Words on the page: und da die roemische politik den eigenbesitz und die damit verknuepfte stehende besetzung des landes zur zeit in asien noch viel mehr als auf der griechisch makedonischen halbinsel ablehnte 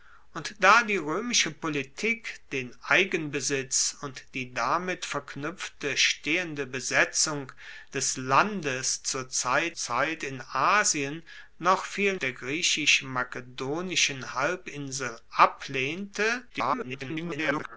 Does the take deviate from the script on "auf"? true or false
true